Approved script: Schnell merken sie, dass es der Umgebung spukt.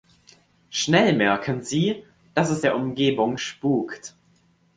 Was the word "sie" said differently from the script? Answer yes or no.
no